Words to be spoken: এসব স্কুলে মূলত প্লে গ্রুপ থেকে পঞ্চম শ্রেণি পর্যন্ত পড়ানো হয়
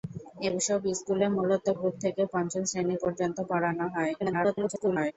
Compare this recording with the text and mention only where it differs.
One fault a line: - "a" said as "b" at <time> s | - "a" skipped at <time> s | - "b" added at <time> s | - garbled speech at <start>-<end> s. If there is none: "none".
- "প্লে" skipped at 1.6 s
- garbled speech at 4.2-5.1 s